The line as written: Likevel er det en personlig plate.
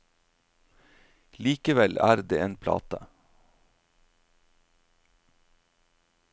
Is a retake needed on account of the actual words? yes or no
yes